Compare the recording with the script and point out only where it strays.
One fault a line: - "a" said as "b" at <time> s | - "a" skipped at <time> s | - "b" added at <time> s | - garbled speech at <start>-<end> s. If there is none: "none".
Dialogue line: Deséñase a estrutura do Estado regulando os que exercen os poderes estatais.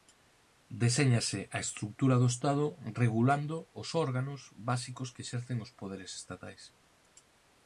- "órganos básicos" added at 4.0 s